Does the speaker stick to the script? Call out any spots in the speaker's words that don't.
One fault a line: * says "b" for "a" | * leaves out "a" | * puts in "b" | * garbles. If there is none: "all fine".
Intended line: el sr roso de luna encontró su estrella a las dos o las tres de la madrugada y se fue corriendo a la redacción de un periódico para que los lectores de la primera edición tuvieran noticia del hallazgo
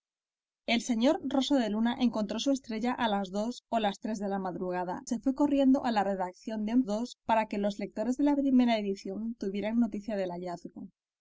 * leaves out "y"
* says "dos" for "periódico"